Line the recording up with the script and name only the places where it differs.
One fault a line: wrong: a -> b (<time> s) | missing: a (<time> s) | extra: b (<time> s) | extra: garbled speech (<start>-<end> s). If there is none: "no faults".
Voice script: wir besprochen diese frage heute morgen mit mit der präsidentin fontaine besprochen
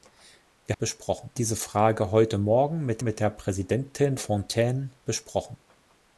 no faults